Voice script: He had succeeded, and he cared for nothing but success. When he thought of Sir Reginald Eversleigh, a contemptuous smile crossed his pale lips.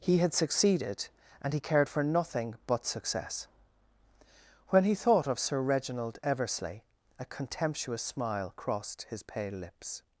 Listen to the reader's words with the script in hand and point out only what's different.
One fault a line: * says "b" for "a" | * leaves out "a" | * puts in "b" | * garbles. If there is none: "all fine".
all fine